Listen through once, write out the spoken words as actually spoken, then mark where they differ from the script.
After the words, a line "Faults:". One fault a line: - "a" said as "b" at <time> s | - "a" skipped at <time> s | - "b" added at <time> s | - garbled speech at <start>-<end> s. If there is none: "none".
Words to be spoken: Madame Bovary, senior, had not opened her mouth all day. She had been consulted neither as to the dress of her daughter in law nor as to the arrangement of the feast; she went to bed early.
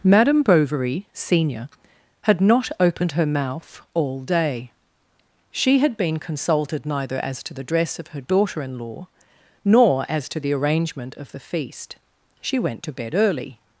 Madame Bovary, senior, had not opened her mouth all day. She had been consulted neither as to the dress of her daughter in law nor as to the arrangement of the feast; she went to bed early.
Faults:
none